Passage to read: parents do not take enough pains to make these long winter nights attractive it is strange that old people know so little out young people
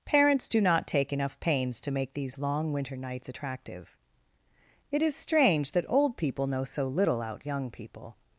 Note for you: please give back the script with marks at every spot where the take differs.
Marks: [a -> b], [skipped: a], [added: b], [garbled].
parents do not take enough pains to make these long winter nights attractive it is strange that old people know so little out young people